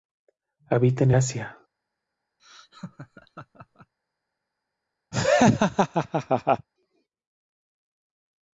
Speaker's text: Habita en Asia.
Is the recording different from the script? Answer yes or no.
no